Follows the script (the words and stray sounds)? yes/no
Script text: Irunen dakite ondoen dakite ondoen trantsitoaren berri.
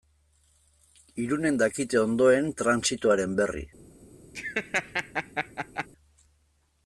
no